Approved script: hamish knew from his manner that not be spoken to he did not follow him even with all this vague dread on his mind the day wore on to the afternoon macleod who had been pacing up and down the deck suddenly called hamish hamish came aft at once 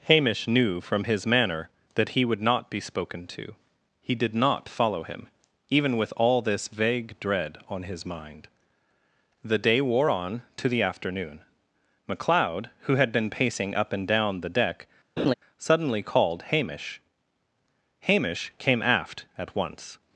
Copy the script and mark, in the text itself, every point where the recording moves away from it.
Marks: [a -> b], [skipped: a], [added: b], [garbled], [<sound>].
hamish knew from his manner that [added: he would] not be spoken to he did not follow him even with all this vague dread on his mind the day wore on to the afternoon macleod who had been pacing up and down the deck [laugh] suddenly called hamish hamish came aft at once